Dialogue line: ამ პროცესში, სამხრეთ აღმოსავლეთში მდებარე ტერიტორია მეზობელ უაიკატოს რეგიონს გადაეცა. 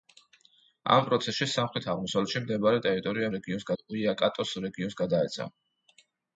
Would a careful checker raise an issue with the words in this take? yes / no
yes